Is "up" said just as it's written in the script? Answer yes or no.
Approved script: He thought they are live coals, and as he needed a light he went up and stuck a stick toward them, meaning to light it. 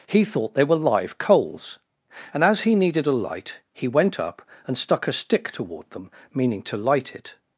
yes